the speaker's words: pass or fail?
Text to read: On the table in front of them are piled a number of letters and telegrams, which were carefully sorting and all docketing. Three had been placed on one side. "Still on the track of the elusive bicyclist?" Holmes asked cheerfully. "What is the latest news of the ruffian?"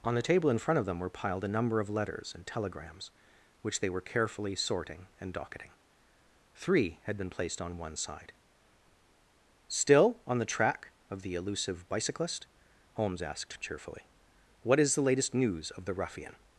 fail